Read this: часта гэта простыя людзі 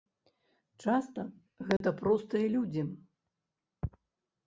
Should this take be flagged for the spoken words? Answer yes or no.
no